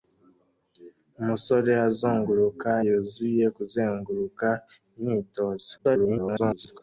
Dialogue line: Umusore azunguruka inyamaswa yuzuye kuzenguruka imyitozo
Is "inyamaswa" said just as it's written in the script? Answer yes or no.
no